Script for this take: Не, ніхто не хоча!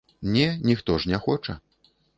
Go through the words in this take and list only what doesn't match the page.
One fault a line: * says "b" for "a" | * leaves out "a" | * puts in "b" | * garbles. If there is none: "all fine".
* puts in "ж"